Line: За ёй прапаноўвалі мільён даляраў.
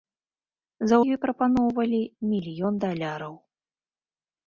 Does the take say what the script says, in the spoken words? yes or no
yes